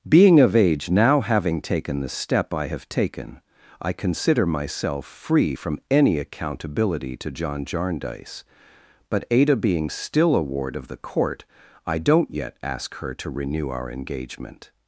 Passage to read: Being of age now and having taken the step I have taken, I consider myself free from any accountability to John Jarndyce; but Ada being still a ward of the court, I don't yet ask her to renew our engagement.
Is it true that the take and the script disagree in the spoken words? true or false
true